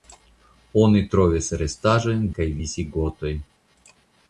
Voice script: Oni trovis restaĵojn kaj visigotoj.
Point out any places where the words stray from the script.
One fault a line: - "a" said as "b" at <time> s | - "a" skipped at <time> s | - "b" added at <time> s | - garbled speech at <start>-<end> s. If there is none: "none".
none